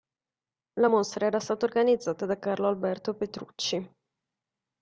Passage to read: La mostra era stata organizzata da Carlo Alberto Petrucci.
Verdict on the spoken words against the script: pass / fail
pass